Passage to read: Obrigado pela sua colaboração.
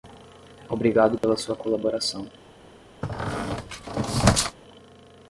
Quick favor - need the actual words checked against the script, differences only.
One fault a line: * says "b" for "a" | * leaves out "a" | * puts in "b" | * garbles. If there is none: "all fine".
all fine